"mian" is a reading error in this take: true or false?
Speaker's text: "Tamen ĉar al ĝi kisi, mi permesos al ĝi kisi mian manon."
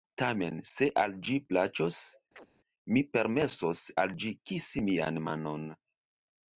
false